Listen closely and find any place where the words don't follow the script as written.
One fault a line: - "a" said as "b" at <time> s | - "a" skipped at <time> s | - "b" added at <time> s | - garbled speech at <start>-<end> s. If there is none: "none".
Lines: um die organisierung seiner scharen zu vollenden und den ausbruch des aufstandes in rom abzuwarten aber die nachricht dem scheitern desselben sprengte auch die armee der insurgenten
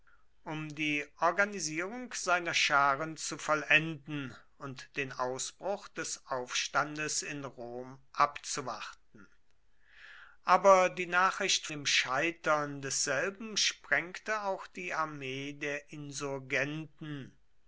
none